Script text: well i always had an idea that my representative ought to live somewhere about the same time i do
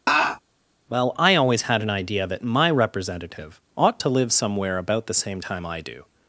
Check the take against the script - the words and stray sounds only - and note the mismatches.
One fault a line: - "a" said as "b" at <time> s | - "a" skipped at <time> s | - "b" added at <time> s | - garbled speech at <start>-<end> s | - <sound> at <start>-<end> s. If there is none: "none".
- laugh at 0.1-0.4 s